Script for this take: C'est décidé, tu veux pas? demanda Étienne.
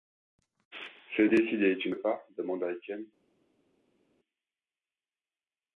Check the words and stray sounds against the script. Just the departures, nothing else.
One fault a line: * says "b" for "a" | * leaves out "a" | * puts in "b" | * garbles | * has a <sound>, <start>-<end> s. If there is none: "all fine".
all fine